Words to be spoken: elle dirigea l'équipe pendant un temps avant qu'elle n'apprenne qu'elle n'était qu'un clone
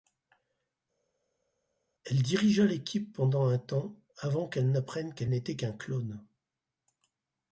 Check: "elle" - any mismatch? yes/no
no